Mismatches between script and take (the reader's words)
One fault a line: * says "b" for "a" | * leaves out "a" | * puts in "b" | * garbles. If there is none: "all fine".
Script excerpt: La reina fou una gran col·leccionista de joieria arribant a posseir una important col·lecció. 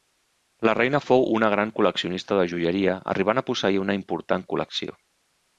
all fine